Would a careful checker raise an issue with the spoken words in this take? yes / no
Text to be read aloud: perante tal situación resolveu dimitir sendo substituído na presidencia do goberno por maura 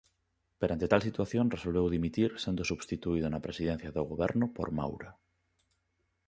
no